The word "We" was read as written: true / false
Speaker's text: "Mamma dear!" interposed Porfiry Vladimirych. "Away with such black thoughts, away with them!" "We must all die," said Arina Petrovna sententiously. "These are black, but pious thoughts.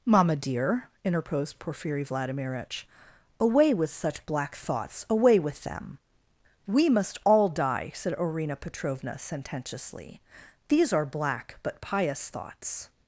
true